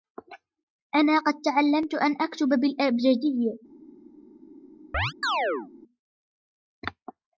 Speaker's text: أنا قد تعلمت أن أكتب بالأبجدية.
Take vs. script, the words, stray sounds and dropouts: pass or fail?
fail